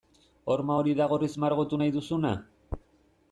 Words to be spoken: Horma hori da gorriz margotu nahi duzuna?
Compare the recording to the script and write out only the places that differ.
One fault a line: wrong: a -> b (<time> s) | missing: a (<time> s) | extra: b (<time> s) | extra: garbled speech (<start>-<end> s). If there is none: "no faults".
no faults